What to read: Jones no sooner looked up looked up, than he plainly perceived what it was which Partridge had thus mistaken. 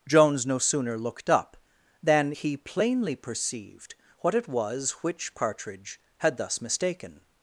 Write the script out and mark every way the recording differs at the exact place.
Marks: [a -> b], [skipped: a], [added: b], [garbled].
Jones no sooner looked up [skipped: looked up,] than he plainly perceived what it was which Partridge had thus mistaken.